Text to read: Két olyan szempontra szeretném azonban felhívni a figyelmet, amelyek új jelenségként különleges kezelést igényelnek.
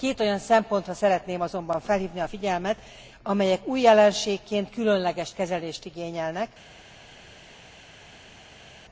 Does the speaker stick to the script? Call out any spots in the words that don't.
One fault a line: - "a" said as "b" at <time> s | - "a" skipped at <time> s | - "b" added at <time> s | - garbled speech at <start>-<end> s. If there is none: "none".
none